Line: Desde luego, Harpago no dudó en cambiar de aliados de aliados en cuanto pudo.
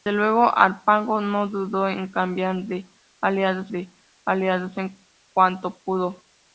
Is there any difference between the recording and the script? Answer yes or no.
no